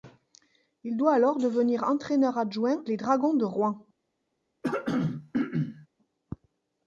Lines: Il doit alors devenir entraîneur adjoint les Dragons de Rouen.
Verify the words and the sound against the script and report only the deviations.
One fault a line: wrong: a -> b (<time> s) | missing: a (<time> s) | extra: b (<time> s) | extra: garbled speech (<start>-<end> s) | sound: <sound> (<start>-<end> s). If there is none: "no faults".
sound: throat clearing (4.6-5.9 s)